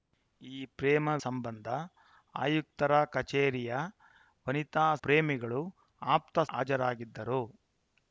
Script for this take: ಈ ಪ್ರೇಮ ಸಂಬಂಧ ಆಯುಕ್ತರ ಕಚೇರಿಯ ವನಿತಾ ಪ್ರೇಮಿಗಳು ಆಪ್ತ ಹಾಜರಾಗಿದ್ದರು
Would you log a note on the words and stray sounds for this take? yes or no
no